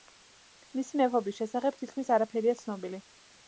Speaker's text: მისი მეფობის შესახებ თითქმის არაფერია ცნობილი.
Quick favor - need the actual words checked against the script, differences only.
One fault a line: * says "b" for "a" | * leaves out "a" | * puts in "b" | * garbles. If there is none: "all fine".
all fine